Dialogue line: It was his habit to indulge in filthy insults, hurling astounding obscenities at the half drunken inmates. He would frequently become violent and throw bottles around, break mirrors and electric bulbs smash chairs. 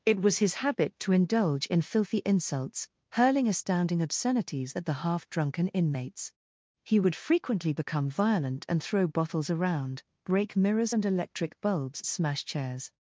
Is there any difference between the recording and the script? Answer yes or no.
no